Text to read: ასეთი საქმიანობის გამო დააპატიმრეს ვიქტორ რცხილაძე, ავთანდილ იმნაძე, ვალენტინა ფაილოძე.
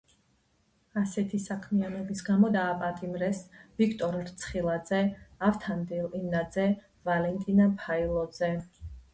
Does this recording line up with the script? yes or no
yes